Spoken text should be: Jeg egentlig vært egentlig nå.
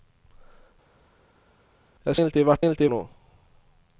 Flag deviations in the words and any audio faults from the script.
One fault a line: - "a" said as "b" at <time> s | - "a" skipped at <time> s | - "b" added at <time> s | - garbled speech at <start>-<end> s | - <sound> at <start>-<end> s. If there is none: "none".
none